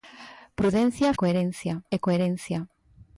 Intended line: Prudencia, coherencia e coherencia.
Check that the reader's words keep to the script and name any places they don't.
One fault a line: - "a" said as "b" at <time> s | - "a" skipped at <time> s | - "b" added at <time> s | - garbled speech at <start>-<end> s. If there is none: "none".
none